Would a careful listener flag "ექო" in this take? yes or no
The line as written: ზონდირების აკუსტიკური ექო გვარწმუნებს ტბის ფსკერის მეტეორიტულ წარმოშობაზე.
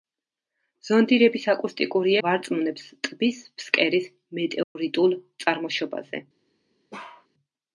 yes